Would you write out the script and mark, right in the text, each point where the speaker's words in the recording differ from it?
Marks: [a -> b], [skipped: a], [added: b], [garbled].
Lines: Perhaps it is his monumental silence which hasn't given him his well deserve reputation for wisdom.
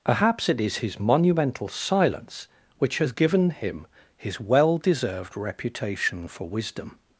Perhaps it is his monumental silence which [hasn't -> has] given him his well [deserve -> deserved] reputation for wisdom.